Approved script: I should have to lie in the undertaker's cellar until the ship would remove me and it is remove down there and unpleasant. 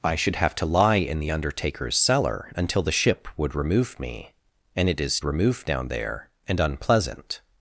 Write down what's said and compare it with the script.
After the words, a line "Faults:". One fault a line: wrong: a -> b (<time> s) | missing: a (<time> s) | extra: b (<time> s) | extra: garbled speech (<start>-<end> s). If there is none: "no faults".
I should have to lie in the undertaker's cellar until the ship would remove me and it is remove down there and unpleasant.
Faults:
no faults